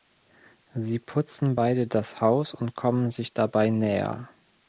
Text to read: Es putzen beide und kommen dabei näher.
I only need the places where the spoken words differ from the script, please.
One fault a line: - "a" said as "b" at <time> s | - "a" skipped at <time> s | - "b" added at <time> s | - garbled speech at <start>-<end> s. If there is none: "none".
- "Es" said as "Sie" at 0.7 s
- "das Haus" added at 1.8 s
- "sich" added at 3.1 s